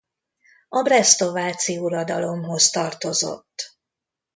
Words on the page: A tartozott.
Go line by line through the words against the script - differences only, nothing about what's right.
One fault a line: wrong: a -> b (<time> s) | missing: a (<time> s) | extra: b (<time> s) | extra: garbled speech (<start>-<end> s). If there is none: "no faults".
extra: bresztováci uradalomhoz (0.8 s)